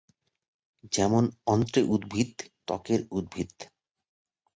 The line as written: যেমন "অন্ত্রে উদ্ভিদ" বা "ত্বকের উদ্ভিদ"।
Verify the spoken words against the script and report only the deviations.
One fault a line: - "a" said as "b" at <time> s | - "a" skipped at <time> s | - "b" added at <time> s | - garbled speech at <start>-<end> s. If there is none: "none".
- "বা" skipped at 2.3 s